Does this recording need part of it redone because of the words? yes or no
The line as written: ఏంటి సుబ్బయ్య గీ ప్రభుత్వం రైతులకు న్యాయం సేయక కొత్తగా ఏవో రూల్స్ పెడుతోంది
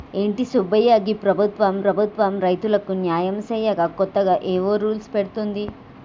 yes